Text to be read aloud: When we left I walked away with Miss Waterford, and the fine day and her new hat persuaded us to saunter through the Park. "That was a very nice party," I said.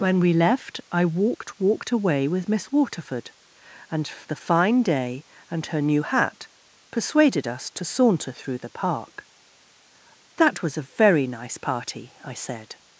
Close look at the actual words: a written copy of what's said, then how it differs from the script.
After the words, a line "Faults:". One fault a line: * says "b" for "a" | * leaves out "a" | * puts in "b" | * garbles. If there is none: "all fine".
When we left I walked walked away with Miss Waterford, and the fine day and her new hat persuaded us to saunter through the Park. "That was a very nice party," I said.
Faults:
* puts in "walked"